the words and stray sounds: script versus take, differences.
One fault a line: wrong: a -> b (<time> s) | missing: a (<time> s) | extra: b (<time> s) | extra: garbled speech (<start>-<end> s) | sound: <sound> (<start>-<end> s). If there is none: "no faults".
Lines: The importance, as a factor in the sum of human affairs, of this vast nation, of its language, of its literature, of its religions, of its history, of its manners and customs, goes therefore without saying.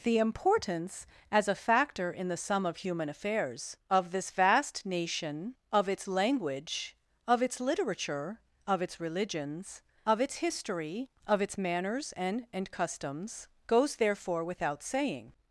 extra: and (12.5 s)